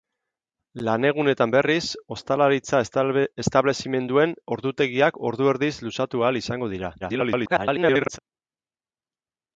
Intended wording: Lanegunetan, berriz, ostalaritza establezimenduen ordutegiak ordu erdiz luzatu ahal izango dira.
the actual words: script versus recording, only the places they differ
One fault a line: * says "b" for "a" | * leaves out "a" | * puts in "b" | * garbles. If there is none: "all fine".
* garbles